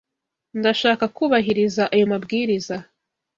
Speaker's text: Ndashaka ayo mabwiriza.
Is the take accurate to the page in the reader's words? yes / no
no